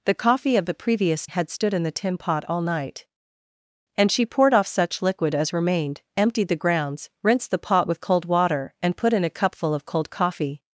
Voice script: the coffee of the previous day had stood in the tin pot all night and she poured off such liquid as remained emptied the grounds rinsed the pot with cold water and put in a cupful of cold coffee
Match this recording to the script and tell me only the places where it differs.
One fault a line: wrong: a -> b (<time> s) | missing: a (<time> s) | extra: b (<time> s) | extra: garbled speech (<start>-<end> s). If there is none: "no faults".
missing: day (1.3 s)